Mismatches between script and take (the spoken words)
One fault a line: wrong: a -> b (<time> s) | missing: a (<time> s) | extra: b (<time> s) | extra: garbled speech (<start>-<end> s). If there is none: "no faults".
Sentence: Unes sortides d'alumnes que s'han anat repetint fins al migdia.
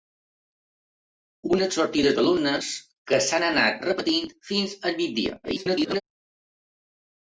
extra: garbled speech (5.4-6.0 s)